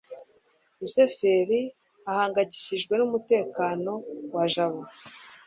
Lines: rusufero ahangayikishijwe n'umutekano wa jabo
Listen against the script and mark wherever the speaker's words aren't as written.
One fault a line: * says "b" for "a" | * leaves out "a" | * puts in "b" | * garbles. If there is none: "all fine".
all fine